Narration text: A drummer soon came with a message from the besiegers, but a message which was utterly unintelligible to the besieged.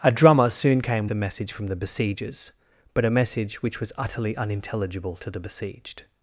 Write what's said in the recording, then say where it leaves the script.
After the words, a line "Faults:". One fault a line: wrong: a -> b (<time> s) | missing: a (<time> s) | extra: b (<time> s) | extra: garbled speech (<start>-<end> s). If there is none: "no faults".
A drummer soon came a message from the besiegers, but a message which was utterly unintelligible to the besieged.
Faults:
missing: with (1.1 s)